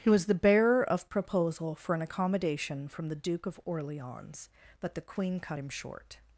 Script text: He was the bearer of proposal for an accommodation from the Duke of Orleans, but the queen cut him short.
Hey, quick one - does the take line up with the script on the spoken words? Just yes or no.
yes